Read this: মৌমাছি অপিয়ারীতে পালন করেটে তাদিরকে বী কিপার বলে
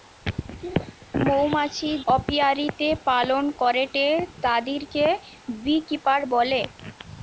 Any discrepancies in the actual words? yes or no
no